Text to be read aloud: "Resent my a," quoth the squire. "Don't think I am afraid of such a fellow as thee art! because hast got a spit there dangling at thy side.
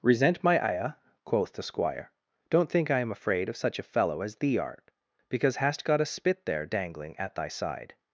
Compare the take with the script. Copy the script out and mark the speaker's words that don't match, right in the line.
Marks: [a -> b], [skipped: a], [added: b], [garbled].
"Resent my [a," -> ire] quoth the squire. "Don't think I am afraid of such a fellow as thee art! because hast got a spit there dangling at thy side.